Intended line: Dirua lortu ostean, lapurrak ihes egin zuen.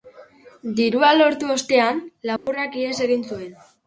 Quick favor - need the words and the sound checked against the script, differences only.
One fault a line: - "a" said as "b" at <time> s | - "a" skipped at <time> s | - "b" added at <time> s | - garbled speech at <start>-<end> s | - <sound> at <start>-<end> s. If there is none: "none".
- dropout at 2.4-2.5 s